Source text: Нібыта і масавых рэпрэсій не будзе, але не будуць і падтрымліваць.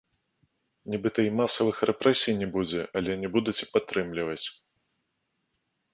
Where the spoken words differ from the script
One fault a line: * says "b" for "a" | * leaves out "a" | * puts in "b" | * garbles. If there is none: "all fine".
all fine